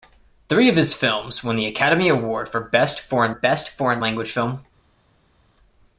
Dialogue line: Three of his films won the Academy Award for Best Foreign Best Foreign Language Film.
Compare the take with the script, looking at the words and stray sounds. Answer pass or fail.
pass